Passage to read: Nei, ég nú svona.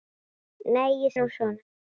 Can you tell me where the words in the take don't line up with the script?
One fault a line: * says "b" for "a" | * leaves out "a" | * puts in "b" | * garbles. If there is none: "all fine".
all fine